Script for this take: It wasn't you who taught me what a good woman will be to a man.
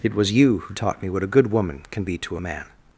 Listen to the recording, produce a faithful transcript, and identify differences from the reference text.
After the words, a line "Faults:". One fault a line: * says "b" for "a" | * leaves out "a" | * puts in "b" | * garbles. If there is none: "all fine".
It was you who taught me what a good woman can be to a man.
Faults:
* says "was" for "wasn't"
* says "can" for "will"